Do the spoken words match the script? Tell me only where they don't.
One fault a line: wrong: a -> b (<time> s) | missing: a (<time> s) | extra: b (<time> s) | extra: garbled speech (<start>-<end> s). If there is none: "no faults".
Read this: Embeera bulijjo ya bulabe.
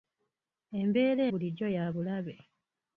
no faults